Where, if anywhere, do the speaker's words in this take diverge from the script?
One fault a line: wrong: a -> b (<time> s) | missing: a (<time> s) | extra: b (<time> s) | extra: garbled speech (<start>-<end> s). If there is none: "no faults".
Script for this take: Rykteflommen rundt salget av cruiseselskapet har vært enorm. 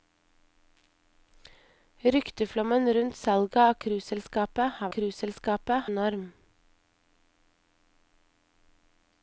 wrong: vært -> cruiseselskapet (5.0 s)